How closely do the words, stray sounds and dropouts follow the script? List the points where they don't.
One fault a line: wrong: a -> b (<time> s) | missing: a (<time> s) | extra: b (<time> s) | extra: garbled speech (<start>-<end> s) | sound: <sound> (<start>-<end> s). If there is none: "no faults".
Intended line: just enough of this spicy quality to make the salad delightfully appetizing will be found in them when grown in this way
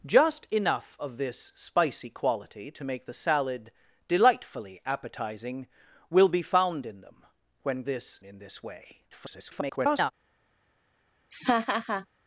wrong: grown -> this (7.8 s)
extra: garbled speech (9.1-10.1 s)
sound: laugh (11.3-12.1 s)